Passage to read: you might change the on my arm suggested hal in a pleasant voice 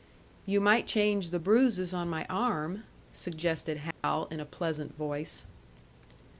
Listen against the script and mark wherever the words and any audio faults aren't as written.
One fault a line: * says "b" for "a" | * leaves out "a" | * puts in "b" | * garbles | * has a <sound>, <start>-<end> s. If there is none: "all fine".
* puts in "bruises"
* has a dropout, 3.9-4.0 s